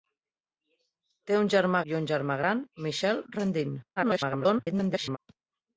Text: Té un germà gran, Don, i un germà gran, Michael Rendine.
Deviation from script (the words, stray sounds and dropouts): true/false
true